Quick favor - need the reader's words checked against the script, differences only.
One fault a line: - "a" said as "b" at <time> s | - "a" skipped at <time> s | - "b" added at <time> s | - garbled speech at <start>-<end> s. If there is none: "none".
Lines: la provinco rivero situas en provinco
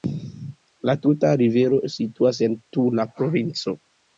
- "provinco" said as "tuta" at 1.0 s
- "tula" added at 2.8 s